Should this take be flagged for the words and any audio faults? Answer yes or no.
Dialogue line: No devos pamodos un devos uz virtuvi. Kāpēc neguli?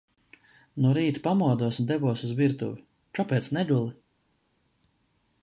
yes